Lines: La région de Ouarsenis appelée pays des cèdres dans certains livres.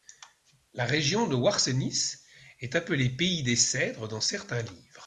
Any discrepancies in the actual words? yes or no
yes